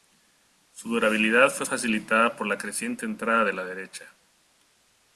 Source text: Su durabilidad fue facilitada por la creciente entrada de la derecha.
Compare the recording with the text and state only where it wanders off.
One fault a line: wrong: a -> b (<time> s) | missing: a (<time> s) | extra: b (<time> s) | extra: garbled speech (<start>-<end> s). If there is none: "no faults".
no faults